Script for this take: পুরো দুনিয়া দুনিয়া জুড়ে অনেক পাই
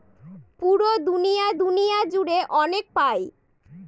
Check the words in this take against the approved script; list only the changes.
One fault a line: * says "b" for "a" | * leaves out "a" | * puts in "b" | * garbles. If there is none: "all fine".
all fine